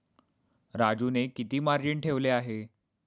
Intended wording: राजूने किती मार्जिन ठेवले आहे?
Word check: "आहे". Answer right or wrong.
right